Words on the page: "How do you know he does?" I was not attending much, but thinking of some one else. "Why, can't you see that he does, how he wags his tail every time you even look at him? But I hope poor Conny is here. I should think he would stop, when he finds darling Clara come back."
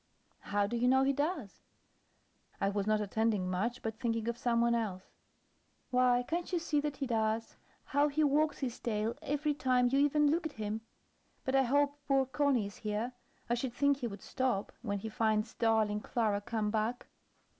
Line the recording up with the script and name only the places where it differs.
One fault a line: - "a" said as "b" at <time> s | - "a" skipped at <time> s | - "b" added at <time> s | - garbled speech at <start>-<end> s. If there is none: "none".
none